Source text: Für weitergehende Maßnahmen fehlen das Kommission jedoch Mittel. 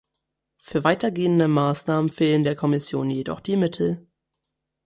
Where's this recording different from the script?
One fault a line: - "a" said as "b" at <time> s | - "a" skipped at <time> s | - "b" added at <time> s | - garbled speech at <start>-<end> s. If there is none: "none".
- "das" said as "der" at 2.4 s
- "die" added at 3.4 s